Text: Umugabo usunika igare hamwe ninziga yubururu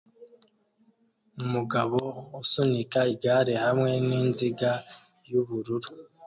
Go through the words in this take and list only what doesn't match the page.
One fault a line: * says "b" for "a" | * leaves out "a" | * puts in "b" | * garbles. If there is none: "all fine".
all fine